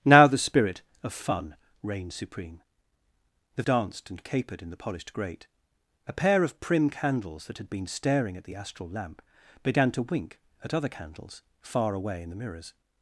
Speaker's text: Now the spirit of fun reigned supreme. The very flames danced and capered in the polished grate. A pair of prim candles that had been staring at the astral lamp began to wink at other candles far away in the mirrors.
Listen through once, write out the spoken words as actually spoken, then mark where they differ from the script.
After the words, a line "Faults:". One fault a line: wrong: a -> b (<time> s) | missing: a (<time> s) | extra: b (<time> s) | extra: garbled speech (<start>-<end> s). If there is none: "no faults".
Now the spirit of fun reigned supreme. The danced and capered in the polished grate. A pair of prim candles that had been staring at the astral lamp began to wink at other candles far away in the mirrors.
Faults:
missing: very flames (3.6 s)